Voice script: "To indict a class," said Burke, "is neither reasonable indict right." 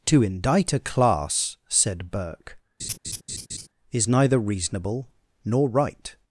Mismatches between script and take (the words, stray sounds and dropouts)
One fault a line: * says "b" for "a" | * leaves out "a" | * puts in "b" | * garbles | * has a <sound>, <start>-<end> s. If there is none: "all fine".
* has a laugh, 2.8-3.7 s
* says "nor" for "indict"